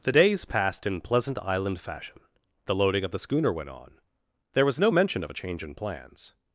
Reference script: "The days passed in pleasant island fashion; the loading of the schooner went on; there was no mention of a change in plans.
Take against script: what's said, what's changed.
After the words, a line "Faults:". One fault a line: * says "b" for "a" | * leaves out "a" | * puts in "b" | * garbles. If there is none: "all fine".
"The days passed in pleasant island fashion; the loading of the schooner went on; there was no mention of a change in plans.
Faults:
all fine